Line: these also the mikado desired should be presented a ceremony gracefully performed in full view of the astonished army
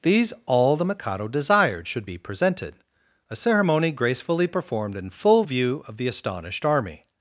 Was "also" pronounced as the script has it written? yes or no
no